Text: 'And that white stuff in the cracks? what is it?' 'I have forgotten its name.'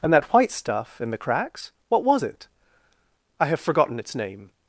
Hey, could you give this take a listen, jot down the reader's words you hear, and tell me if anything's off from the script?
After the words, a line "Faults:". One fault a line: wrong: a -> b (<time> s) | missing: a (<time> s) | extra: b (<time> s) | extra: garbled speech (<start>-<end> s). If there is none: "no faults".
'And that white stuff in the cracks? what was it?' 'I have forgotten its name.'
Faults:
wrong: is -> was (2.0 s)